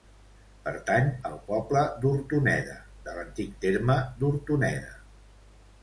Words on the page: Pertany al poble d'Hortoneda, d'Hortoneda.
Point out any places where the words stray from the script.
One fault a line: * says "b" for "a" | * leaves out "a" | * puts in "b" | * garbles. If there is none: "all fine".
* puts in "de l'antic terme"